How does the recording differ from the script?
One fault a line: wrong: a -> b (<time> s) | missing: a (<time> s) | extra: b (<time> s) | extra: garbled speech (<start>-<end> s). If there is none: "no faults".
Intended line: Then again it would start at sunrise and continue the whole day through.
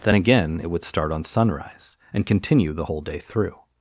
wrong: at -> on (1.1 s)